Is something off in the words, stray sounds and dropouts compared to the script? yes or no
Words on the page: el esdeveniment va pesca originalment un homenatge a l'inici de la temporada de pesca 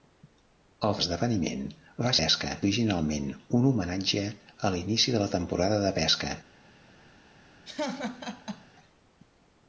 yes